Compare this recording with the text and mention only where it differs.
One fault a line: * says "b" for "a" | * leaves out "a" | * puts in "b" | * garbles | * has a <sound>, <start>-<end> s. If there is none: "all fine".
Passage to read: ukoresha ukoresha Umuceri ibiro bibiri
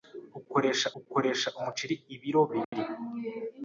* has a dropout, 2.6-2.7 s